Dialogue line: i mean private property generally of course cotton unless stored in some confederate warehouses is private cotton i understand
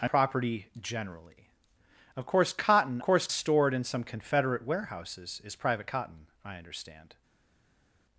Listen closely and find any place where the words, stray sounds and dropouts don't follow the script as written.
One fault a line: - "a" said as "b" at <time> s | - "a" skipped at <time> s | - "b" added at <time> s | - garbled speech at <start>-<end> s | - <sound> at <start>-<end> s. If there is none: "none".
- "mean private" skipped at 0.1 s
- "unless" said as "course" at 3.0 s